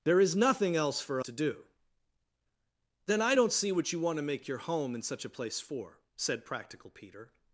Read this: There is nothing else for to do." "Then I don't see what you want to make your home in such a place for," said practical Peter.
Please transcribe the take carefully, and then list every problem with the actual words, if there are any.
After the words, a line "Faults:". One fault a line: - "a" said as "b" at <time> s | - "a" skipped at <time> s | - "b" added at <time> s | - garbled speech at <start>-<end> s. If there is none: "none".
There is nothing else for to do." "Then I don't see what you want to make your home in such a place for," said practical Peter.
Faults:
none